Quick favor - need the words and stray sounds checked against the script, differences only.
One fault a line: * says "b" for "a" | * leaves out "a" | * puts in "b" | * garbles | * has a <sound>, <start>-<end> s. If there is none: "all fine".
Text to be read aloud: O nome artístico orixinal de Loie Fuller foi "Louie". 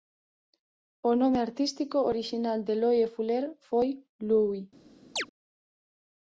* has a chirp, 5.2-5.3 s